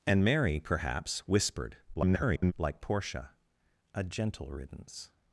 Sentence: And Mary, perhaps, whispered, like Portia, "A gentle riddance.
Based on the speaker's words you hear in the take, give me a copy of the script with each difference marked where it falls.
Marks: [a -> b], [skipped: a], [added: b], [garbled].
And Mary, perhaps, whispered, [garbled] like Portia, "A gentle riddance.